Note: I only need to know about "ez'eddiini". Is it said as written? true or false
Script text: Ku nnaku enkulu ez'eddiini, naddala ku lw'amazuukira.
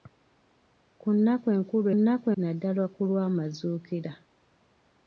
false